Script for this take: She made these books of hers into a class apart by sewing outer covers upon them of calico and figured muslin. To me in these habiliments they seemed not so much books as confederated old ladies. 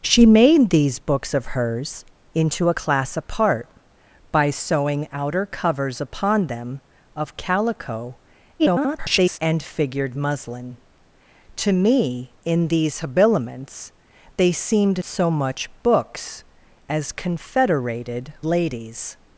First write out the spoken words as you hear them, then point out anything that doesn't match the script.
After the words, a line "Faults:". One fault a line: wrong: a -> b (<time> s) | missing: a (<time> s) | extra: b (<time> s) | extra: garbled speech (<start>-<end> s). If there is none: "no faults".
She made these books of hers into a class apart by sewing outer covers upon them of calico [garbled] and figured muslin. To me in these habiliments they seemed so much books as confederated ladies.
Faults:
extra: garbled speech (8.6-9.4 s)
missing: not (15.0 s)
missing: old (18.3 s)